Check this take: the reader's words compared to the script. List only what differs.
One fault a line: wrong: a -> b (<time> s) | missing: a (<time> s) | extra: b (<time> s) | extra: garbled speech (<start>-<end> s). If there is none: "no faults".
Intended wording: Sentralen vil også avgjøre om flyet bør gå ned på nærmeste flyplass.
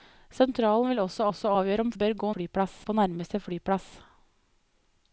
extra: også (1.3 s)
missing: flyet (1.9 s)
wrong: ned -> flyplass (2.3 s)